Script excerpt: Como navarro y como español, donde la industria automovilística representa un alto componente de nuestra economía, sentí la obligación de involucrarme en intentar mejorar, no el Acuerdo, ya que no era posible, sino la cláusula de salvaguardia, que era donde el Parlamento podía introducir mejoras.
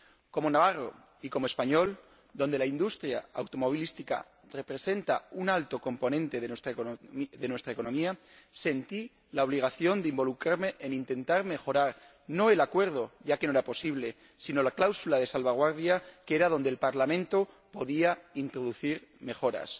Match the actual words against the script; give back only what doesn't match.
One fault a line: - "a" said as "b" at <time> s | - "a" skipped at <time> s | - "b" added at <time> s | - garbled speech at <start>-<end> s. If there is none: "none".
none